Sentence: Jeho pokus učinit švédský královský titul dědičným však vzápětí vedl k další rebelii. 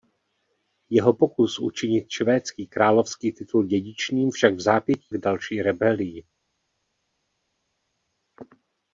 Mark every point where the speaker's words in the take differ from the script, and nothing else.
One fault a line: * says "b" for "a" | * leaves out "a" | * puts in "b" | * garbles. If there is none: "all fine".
* leaves out "vedl"